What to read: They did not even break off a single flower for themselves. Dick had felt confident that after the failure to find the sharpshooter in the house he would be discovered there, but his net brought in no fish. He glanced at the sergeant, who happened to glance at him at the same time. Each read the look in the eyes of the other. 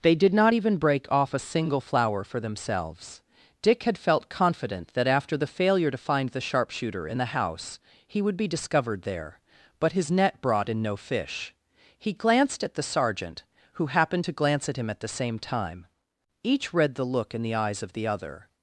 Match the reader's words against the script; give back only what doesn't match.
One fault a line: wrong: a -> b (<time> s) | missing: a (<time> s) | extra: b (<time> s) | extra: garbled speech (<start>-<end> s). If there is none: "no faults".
no faults